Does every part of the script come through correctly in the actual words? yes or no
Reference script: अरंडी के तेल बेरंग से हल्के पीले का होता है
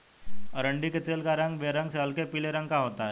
no